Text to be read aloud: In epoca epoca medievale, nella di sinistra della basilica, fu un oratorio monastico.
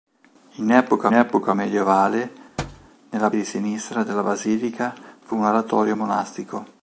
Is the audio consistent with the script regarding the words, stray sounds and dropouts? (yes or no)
no